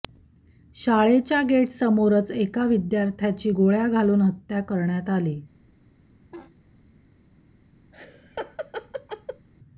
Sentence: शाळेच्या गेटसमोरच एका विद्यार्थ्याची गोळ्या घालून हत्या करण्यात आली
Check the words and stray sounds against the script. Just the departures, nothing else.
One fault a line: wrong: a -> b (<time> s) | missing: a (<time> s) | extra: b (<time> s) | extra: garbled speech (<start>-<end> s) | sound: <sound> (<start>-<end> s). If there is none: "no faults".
sound: laugh (6.3-6.6 s)
sound: laugh (7.9-9.5 s)